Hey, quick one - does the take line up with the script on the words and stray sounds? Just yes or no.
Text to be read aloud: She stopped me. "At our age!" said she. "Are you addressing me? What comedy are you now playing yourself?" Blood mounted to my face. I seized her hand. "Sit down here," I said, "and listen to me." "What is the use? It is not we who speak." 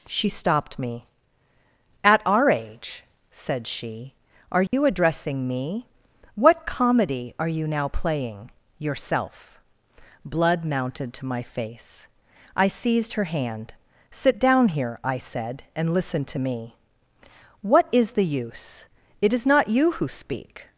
no